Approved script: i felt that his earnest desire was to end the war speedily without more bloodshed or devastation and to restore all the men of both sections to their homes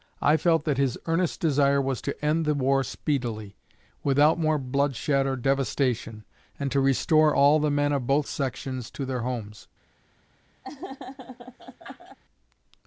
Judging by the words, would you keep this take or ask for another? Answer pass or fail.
pass